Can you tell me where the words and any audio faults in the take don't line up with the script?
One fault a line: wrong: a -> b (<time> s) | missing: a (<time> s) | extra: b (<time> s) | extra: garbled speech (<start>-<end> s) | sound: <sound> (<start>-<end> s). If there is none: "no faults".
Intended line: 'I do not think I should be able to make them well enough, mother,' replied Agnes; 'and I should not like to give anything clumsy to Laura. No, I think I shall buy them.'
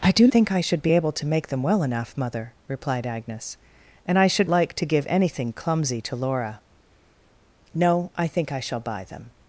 missing: not (0.3 s)
missing: not (4.5 s)